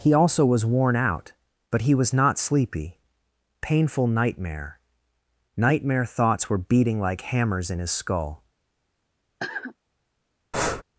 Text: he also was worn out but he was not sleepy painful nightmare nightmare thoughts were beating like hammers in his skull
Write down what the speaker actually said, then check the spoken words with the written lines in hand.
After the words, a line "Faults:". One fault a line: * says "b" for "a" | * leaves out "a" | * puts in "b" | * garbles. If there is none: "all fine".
he also was worn out but he was not sleepy painful nightmare nightmare thoughts were beating like hammers in his skull
Faults:
all fine